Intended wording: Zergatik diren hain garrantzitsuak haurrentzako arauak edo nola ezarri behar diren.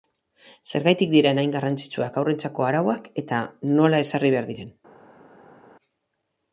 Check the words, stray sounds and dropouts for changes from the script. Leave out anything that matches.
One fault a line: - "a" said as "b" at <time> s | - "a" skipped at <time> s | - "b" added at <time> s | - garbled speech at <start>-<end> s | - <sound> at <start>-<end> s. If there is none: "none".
- "edo" said as "eta" at 3.2 s